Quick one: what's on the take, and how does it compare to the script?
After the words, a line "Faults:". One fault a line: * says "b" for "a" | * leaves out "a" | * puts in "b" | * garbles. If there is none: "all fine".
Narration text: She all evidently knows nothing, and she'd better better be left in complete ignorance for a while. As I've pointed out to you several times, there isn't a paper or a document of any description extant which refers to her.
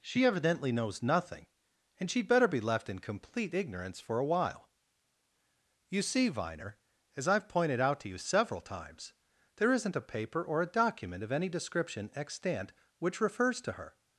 She evidently knows nothing, and she'd better be left in complete ignorance for a while. You see, Viner, as I've pointed out to you several times, there isn't a paper or a document of any description extant which refers to her.
Faults:
* leaves out "all"
* leaves out "better"
* puts in "You see Viner"